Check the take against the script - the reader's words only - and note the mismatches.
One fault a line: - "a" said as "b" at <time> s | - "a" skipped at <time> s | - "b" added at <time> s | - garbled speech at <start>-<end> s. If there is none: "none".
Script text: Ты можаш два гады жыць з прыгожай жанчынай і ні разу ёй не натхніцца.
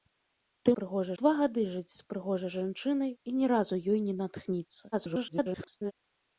- "можаш" said as "прыгожай" at 0.8 s
- garbled speech at 4.9-5.9 s